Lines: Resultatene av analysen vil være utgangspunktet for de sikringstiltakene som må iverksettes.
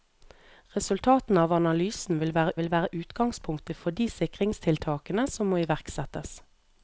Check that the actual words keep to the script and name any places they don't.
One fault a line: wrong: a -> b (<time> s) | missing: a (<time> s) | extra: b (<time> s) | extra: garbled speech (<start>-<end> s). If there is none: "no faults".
extra: vil være (2.6 s)